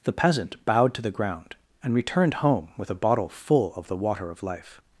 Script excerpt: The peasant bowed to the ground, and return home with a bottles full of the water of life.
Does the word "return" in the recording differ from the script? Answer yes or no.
yes